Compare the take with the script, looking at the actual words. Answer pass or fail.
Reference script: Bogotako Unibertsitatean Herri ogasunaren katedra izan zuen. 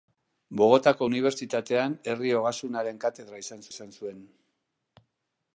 fail